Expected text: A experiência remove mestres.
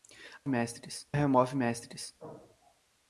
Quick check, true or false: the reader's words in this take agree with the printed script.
false